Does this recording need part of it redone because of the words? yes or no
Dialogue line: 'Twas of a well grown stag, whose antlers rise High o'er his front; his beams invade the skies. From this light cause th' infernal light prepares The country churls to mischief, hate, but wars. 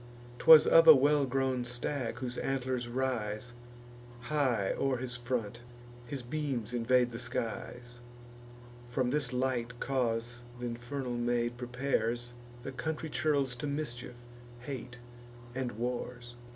yes